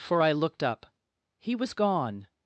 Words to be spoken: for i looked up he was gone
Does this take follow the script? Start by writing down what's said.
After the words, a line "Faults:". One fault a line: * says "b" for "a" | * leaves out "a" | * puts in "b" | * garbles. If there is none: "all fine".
for i looked up he was gone
Faults:
all fine